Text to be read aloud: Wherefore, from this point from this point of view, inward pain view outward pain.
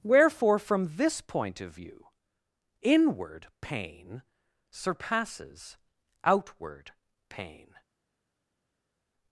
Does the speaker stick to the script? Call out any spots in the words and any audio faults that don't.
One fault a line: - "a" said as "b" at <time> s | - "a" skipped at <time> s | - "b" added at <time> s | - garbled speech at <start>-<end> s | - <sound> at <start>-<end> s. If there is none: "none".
- "from this point" skipped at 1.6 s
- "view" said as "surpasses" at 4.7 s